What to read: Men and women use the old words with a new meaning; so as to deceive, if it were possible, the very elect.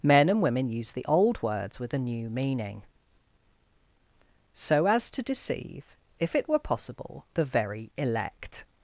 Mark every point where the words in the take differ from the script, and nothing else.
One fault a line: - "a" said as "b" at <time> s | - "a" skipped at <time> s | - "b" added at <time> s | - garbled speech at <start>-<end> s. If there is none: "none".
none